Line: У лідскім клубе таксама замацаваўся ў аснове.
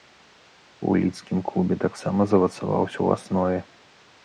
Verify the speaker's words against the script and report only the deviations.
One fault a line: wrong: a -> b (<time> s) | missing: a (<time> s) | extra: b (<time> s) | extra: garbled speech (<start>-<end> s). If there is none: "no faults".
no faults